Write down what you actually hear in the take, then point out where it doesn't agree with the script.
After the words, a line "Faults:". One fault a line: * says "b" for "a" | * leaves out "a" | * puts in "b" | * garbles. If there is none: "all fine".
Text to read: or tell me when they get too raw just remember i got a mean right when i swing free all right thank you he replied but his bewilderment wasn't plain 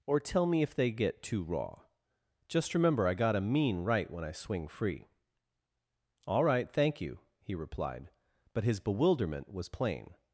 or tell me if they get too raw just remember i got a mean right when i swing free all right thank you he replied but his bewilderment was plain
Faults:
* says "if" for "when"
* says "was" for "wasn't"